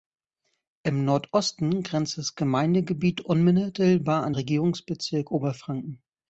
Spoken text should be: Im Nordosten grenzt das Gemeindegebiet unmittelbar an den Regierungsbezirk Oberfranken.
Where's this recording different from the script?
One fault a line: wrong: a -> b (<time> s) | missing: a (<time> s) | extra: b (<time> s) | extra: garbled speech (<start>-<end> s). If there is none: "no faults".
missing: den (4.3 s)